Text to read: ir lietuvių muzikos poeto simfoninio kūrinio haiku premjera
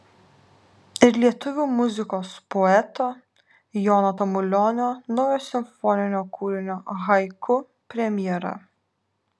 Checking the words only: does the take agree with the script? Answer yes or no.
no